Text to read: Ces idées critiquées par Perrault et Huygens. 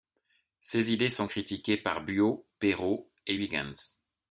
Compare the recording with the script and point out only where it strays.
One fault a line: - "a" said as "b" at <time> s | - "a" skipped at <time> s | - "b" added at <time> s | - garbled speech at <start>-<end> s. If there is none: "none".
- "sont" added at 1.1 s
- "Buot" added at 2.0 s